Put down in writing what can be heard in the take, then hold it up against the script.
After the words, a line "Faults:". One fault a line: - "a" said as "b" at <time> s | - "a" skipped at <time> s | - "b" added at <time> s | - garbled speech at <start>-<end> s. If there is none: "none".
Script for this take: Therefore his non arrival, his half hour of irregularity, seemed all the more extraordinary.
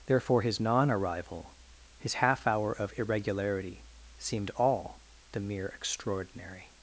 Therefore his non arrival, his half hour of irregularity, seemed all the mere extraordinary.
Faults:
- "more" said as "mere" at 5.4 s